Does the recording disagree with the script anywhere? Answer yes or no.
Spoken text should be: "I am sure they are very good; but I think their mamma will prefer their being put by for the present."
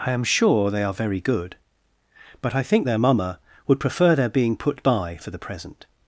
yes